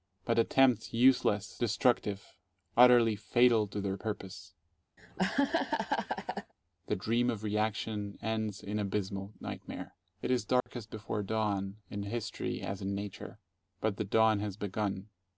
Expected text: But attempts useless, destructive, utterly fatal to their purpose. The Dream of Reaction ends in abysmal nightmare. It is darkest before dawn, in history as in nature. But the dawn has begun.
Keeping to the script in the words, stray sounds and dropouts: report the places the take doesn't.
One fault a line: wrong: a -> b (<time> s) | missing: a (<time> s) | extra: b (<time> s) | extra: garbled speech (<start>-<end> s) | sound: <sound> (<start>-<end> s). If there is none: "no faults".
sound: laugh (5.0-6.5 s)
sound: dropout (10.6-10.7 s)